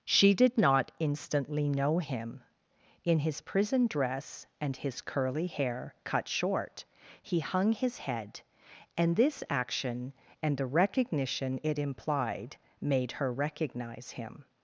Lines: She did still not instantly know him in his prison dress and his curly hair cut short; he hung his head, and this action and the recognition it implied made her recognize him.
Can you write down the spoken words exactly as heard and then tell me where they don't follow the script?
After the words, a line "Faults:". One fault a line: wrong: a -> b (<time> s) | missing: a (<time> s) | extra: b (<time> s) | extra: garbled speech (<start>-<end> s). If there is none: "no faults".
She did not instantly know him in his prison dress and his curly hair cut short; he hung his head, and this action and the recognition it implied made her recognize him.
Faults:
missing: still (0.6 s)